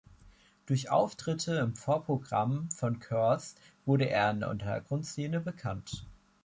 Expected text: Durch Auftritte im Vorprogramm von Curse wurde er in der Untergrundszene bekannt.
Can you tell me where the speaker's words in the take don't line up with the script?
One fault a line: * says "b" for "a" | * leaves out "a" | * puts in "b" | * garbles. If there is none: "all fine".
all fine